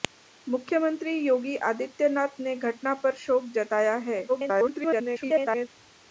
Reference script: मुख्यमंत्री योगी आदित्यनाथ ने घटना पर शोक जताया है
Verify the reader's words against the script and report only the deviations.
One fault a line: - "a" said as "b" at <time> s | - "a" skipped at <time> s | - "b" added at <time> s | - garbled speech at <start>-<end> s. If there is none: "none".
- garbled speech at 4.3-5.7 s